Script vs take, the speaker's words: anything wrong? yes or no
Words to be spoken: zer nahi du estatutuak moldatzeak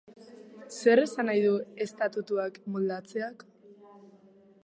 yes